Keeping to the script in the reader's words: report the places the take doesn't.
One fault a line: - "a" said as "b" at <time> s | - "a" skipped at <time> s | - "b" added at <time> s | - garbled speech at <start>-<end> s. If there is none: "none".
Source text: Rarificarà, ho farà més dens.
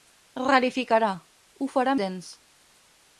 - "més" skipped at 2.0 s